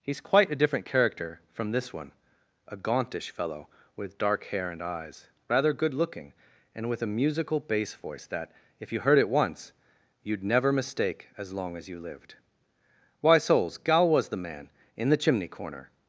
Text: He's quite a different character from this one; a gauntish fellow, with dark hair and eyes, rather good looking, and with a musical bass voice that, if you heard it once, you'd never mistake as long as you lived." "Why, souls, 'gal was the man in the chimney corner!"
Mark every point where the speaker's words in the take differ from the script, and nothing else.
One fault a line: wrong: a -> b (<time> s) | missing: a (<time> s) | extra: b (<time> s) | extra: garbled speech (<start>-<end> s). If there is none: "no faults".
no faults